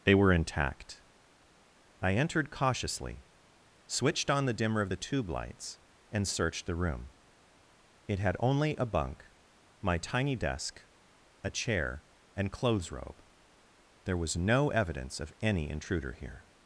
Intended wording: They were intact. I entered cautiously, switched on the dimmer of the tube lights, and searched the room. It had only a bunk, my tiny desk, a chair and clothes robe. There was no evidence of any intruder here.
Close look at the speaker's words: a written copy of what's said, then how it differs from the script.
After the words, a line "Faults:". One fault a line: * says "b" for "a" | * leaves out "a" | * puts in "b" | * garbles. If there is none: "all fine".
They were intact. I entered cautiously, switched on the dimmer of the tube lights, and searched the room. It had only a bunk, my tiny desk, a chair and clothes robe. There was no evidence of any intruder here.
Faults:
all fine